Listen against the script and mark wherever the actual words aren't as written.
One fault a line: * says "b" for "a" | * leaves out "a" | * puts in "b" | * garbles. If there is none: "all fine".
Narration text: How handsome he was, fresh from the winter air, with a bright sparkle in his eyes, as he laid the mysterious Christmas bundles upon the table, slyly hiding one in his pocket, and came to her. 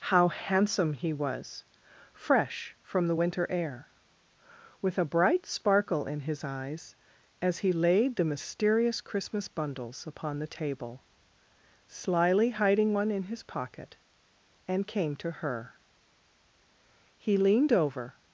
* puts in "He leaned over"